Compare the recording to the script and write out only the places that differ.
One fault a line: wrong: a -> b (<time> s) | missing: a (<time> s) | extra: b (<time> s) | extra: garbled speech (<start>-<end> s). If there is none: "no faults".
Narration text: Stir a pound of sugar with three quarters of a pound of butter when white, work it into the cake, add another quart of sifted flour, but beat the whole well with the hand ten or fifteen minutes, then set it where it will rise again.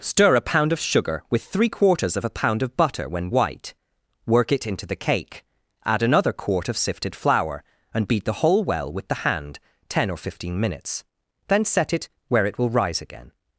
wrong: but -> and (7.9 s)